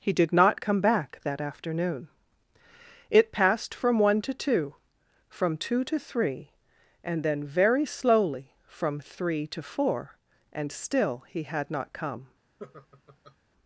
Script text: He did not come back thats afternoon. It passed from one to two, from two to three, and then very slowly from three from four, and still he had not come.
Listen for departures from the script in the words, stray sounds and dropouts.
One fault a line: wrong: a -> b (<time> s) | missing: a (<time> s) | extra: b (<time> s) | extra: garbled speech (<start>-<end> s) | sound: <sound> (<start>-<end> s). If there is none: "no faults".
wrong: thats -> that (1.2 s)
wrong: from -> to (9.5 s)
sound: laugh (12.6-13.4 s)